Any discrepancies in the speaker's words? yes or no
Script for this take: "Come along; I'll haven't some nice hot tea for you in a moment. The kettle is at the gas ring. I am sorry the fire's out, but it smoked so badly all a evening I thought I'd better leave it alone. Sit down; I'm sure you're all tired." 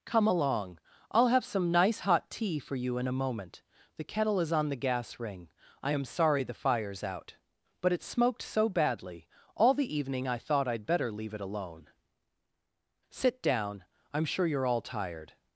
yes